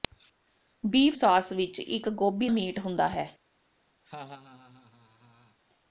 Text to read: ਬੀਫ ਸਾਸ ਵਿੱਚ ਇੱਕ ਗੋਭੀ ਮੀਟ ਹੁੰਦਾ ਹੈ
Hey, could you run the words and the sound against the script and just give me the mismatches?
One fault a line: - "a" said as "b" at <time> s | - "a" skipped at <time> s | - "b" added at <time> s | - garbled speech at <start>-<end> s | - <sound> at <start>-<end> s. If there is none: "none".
- laugh at 4.0-5.6 s